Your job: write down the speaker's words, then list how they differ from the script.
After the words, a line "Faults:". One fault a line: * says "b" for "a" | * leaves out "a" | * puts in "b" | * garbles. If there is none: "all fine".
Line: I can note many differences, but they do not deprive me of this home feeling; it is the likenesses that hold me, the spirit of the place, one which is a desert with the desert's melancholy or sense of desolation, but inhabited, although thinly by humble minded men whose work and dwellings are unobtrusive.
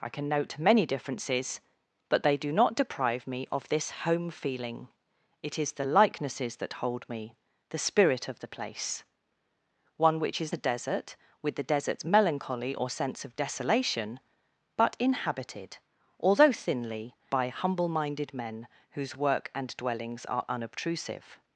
I can note many differences, but they do not deprive me of this home feeling; it is the likenesses that hold me, the spirit of the place, one which is a desert with the desert's melancholy or sense of desolation, but inhabited, although thinly by humble minded men whose work and dwellings are unobtrusive.
Faults:
all fine